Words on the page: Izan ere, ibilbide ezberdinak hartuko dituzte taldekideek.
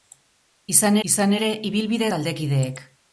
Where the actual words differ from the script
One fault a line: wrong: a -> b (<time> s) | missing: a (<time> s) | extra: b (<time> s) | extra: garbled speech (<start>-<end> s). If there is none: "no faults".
extra: izan (1.1 s)
missing: ezberdinak hartuko dituzte (2.1 s)